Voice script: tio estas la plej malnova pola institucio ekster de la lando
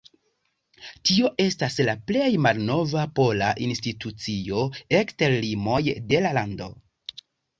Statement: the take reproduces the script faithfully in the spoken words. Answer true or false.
false